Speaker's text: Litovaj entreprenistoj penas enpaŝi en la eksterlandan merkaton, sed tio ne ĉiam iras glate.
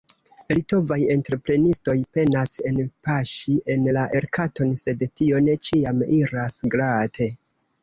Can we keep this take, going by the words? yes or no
no